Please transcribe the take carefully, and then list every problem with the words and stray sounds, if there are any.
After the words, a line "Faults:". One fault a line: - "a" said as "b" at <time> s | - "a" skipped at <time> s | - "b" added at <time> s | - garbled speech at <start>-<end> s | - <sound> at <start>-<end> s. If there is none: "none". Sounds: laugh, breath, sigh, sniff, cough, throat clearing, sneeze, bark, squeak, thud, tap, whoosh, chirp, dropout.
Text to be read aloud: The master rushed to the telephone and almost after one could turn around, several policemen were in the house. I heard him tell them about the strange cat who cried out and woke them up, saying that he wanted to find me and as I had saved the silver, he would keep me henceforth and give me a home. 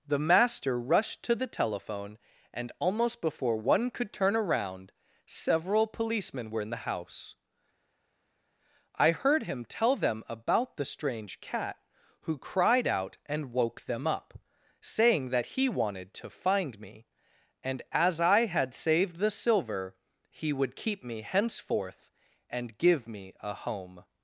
The master rushed to the telephone and almost before one could turn around, several policemen were in the house. I heard him tell them about the strange cat who cried out and woke them up, saying that he wanted to find me and as I had saved the silver, he would keep me henceforth and give me a home.
Faults:
- "after" said as "before" at 3.2 s